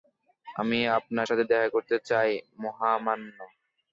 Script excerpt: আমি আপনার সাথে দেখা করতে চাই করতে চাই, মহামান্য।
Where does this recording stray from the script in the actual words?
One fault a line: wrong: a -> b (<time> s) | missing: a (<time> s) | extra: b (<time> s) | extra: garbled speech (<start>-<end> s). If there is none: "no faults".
missing: করতে চাই (2.3 s)